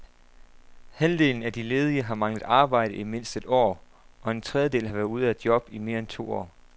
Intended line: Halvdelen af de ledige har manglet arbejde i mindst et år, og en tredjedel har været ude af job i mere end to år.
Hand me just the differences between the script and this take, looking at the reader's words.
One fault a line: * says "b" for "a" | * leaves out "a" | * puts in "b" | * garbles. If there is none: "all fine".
all fine